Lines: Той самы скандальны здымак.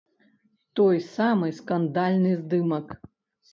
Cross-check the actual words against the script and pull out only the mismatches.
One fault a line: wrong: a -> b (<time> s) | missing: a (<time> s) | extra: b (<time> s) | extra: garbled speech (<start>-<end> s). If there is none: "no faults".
no faults